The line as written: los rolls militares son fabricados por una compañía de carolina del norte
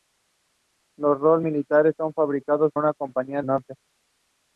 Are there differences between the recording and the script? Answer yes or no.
yes